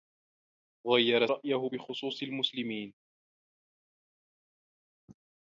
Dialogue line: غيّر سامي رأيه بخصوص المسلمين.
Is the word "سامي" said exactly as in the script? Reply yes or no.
no